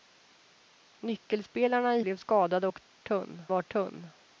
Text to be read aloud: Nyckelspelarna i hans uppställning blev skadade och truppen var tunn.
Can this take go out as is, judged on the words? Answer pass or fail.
fail